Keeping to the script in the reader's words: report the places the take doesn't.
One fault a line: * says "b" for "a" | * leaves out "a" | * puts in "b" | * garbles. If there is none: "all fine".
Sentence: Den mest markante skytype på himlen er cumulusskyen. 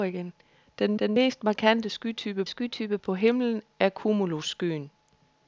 * puts in "den"
* puts in "skytype"